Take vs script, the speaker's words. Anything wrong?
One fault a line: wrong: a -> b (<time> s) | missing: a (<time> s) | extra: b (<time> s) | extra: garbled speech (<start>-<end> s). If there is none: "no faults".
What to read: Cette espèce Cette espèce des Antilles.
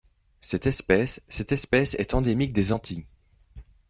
extra: est endémique (1.9 s)